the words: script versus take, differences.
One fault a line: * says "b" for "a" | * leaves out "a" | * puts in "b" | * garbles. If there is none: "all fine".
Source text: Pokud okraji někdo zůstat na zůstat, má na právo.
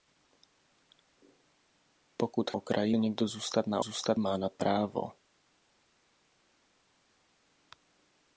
all fine